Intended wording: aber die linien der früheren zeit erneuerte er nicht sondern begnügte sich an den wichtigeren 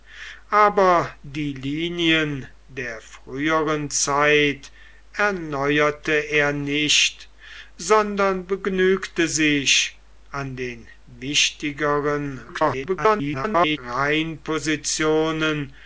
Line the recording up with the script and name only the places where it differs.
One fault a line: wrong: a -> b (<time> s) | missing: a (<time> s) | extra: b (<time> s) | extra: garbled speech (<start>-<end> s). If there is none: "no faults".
extra: garbled speech (12.5-13.8 s)